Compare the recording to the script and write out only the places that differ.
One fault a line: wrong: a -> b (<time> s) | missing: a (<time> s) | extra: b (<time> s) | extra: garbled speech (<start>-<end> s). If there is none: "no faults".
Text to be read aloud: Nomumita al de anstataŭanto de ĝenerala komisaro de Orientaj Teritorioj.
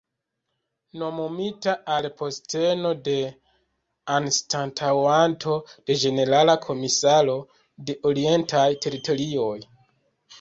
extra: posteno (2.2 s)